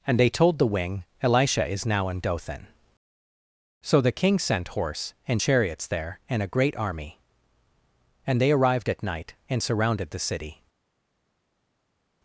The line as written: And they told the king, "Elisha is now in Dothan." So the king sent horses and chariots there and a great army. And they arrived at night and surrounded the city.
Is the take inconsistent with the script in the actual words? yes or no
yes